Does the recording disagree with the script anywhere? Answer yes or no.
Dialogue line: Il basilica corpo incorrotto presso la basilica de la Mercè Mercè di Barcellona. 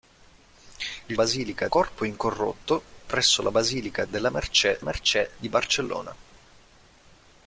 no